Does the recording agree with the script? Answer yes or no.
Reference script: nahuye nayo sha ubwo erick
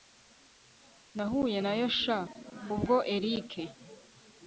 yes